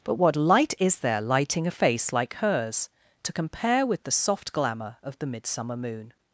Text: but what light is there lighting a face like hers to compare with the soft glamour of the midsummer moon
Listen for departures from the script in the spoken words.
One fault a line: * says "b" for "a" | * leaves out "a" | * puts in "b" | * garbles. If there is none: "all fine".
all fine